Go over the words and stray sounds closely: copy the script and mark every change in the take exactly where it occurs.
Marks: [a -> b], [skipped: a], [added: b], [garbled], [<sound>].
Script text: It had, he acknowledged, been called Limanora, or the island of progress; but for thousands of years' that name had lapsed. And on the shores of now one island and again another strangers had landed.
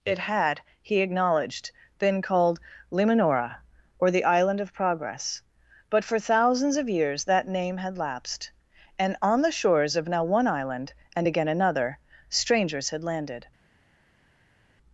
It had, he acknowledged, been called Limanora, or the island of progress; but for thousands of years' that name had lapsed. And on the shores of now one island and again another strangers had landed.